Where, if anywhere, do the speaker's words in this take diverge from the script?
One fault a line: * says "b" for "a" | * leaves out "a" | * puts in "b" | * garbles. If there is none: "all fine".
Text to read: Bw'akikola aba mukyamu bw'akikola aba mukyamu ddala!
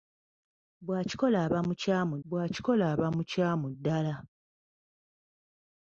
all fine